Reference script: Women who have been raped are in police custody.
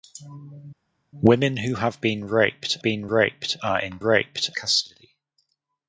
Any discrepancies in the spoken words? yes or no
yes